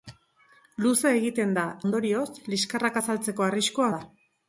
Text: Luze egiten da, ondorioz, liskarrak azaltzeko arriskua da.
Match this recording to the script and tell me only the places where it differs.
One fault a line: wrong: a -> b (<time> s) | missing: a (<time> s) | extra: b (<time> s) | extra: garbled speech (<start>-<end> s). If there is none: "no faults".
no faults